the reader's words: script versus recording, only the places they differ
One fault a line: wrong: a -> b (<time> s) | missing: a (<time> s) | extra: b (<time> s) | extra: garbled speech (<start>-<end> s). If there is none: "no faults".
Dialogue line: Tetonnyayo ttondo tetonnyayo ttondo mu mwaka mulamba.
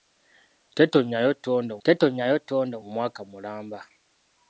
no faults